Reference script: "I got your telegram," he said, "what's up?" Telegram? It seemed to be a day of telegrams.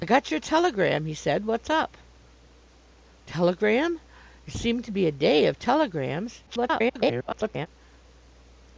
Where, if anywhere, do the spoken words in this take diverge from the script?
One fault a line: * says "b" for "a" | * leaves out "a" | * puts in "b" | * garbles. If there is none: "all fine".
* garbles